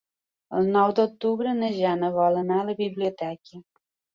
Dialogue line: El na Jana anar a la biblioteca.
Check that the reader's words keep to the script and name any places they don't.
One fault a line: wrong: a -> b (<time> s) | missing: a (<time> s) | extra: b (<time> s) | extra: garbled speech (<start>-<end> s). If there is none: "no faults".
extra: nou d'octubre (0.8 s)
extra: vol (2.2 s)